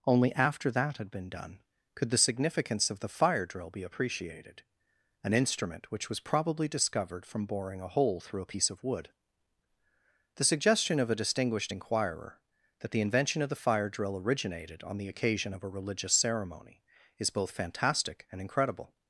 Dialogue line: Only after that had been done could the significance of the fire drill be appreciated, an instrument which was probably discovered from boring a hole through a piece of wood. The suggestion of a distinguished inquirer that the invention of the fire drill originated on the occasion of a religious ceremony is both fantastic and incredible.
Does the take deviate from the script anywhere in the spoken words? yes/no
no